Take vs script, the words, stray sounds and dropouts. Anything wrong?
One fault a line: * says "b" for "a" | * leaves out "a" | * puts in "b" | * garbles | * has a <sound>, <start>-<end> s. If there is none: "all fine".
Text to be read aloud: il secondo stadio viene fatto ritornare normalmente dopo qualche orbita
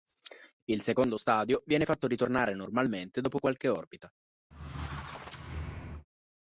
* has a squeak, 4.5-6.1 s